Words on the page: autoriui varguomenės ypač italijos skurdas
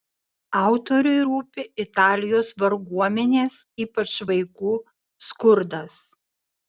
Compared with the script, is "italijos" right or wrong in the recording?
wrong